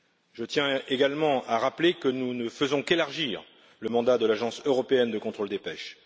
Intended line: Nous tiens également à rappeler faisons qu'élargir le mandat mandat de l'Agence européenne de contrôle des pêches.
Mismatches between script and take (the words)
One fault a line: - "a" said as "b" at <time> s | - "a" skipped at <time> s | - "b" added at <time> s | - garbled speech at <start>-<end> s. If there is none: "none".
- "Nous" said as "Je" at 0.3 s
- "que nous ne" added at 1.9 s
- "mandat" skipped at 4.2 s